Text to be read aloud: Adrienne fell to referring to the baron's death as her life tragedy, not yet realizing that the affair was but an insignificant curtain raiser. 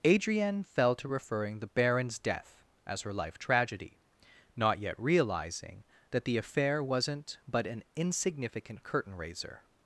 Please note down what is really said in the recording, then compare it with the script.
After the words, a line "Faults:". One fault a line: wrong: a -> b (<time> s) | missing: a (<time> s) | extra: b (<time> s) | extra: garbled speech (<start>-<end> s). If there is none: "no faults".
Adrienne fell to referring the baron's death as her life tragedy, not yet realizing that the affair wasn't but an insignificant curtain raiser.
Faults:
missing: to (1.6 s)
wrong: was -> wasn't (6.8 s)